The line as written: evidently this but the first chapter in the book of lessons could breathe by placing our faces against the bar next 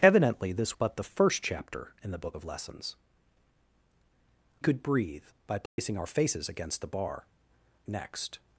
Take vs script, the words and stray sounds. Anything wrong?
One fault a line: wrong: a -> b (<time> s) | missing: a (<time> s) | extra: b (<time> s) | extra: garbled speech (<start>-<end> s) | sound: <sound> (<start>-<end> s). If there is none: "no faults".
sound: dropout (5.7-5.8 s)